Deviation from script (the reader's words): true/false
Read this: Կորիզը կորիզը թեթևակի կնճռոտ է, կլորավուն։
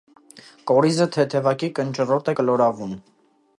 true